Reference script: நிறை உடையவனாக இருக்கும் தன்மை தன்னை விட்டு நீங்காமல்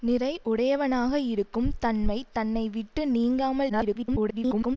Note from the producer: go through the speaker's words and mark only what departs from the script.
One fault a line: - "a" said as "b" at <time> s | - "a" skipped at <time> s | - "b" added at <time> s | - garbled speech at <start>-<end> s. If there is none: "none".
- garbled speech at 3.7-4.8 s